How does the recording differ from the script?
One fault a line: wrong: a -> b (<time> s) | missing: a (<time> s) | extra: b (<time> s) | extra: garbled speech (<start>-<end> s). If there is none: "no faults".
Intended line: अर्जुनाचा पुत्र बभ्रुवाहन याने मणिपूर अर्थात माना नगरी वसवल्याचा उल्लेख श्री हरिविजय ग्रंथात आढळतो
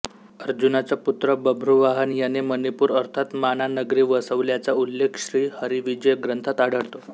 no faults